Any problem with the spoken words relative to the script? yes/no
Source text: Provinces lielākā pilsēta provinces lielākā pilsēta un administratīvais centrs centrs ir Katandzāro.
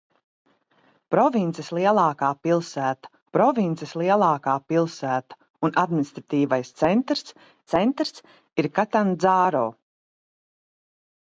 no